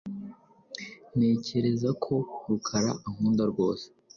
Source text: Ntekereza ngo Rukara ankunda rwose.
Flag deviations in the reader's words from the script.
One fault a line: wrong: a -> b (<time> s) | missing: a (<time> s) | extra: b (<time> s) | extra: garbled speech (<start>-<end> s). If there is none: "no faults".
wrong: ngo -> ko (2.0 s)